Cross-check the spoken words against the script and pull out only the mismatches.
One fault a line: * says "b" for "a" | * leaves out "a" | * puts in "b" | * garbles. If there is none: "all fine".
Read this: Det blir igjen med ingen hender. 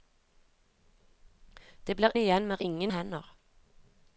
all fine